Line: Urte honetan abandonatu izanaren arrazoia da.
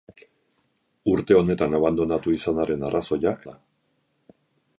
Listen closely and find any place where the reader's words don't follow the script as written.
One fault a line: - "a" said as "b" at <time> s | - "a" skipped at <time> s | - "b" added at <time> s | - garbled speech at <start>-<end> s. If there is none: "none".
none